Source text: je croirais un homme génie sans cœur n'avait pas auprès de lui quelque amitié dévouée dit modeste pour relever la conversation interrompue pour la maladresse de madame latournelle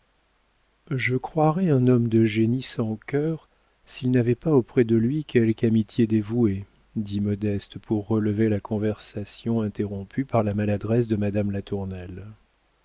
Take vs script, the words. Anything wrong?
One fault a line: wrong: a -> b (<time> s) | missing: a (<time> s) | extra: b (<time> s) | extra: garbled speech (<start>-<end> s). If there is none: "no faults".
extra: de (2.1 s)
extra: s'il (3.9 s)
wrong: pour -> par (10.2 s)